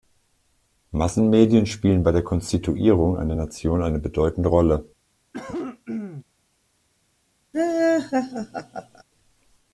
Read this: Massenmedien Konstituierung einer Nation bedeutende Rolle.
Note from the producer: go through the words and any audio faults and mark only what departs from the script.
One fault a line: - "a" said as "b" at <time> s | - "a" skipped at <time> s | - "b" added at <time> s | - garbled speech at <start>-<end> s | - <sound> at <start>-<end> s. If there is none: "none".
- "spielen bei der" added at 1.7 s
- "eine" added at 3.8 s
- cough at 5.3-6.2 s
- laugh at 7.5-9.0 s